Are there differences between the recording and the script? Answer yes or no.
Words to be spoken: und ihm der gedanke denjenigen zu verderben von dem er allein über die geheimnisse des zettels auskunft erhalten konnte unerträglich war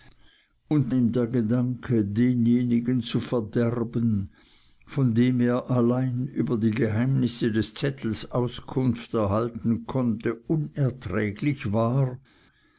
no